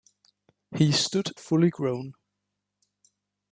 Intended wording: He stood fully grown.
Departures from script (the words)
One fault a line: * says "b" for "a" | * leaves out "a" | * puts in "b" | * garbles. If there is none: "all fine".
all fine